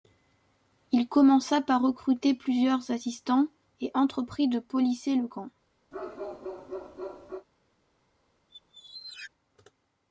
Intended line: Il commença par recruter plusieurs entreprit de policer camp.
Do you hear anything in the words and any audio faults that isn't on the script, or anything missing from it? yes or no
yes